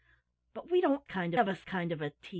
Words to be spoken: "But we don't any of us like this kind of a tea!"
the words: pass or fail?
fail